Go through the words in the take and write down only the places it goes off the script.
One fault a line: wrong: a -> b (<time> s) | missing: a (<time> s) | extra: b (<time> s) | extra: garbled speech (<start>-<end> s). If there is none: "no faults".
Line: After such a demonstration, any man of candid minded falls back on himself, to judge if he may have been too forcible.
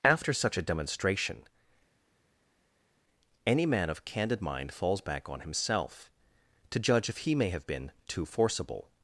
wrong: minded -> mind (4.4 s)